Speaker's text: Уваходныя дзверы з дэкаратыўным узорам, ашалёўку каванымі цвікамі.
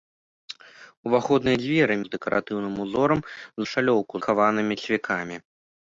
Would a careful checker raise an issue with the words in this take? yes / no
no